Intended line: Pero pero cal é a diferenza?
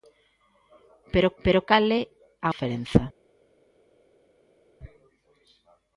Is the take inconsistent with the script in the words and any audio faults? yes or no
no